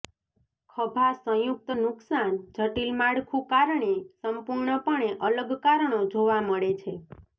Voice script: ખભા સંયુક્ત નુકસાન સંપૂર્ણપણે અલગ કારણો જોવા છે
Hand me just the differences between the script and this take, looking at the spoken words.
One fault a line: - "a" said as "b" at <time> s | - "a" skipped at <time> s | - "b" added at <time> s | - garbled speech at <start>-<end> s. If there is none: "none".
- "જટિલ માળખું કારણે" added at 2.5 s
- "મળે" added at 6.5 s